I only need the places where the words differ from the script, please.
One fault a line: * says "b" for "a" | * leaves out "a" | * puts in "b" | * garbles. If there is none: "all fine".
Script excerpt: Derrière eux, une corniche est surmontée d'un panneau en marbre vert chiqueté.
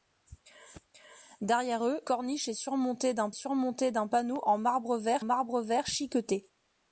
* leaves out "une"
* puts in "surmontée d'un"
* puts in "marbre vert"